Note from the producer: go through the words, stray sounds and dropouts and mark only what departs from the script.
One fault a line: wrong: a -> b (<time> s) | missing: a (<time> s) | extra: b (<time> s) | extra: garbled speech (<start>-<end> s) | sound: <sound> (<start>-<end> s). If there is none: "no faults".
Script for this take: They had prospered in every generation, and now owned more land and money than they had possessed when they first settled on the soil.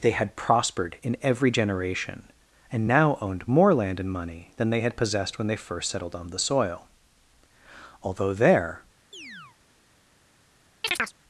extra: Although there (8.0 s)
sound: chirp (9.1-9.6 s)
sound: chirp (10.8-11.1 s)